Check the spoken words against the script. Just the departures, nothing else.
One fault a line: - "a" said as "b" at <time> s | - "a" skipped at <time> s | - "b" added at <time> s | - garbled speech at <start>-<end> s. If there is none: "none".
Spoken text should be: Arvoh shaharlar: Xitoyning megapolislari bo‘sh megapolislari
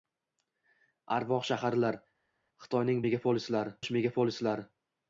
none